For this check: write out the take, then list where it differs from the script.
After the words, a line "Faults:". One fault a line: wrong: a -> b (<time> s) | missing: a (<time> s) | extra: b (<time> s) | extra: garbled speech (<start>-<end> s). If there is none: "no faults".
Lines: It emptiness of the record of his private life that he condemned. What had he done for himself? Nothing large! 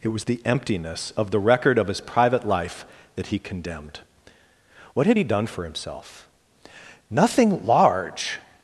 It was the emptiness of the record of his private life that he condemned. What had he done for himself? Nothing large!
Faults:
extra: was the (0.1 s)